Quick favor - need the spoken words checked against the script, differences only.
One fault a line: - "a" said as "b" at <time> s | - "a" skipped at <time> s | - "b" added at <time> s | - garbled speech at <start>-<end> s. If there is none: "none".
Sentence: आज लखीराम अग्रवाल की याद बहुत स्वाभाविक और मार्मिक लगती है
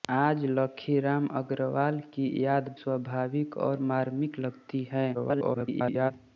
- "बहुत" skipped at 2.8 s
- garbled speech at 5.1-6.1 s